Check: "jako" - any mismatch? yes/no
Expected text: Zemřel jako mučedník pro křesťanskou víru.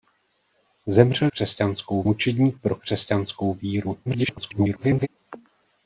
yes